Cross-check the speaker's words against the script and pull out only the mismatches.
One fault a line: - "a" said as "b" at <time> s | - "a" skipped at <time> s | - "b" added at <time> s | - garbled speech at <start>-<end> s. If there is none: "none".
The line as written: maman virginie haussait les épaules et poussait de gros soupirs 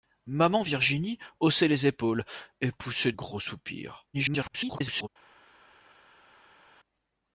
- "de" skipped at 3.1 s
- garbled speech at 4.1-5.1 s